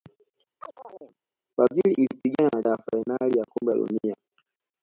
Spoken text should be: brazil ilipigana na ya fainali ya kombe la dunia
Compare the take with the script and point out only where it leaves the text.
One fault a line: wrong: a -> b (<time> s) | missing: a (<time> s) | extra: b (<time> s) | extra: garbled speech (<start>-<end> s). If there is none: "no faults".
no faults